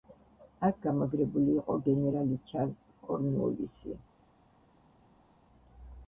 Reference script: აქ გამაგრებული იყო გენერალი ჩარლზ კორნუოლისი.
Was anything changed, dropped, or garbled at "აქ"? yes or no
no